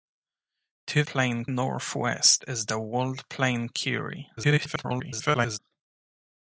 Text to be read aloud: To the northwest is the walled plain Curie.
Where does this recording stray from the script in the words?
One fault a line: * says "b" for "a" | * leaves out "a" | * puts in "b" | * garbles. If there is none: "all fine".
* says "plain" for "the"
* garbles